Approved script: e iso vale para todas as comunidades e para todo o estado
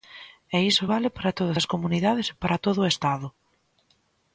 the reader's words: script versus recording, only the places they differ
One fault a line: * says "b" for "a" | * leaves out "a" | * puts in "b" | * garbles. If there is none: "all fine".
all fine